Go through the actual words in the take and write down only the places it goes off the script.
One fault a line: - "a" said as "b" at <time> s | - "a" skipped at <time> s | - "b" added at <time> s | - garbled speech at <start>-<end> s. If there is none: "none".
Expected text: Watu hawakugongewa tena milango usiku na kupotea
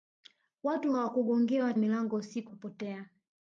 - "tena" skipped at 1.7 s
- "na" skipped at 2.5 s